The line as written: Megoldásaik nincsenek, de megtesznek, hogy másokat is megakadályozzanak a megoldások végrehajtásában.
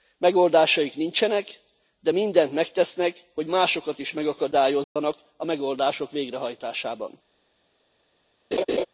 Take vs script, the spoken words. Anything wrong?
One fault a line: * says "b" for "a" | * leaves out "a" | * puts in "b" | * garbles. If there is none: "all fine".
* puts in "mindent"